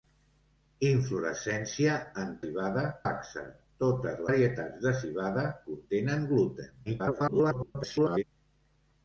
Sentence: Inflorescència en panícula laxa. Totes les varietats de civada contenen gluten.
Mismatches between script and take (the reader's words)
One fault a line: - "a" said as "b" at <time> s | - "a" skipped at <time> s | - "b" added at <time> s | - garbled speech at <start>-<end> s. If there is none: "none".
- "panícula" said as "civada" at 2.5 s
- "les" skipped at 4.2 s
- garbled speech at 6.9-8.2 s